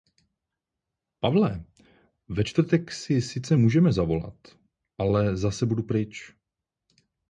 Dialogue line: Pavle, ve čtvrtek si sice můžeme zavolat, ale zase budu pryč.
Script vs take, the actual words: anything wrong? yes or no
no